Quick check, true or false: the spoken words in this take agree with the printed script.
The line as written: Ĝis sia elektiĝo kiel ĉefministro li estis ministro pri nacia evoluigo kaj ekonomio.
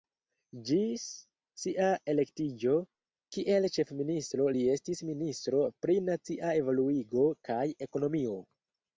true